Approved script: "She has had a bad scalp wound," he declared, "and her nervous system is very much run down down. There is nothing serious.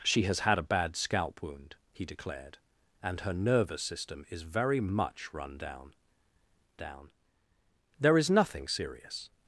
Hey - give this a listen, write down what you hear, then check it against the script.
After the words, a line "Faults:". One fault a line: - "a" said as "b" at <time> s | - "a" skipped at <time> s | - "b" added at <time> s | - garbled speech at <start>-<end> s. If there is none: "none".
"She has had a bad scalp wound," he declared, "and her nervous system is very much run down down. There is nothing serious.
Faults:
none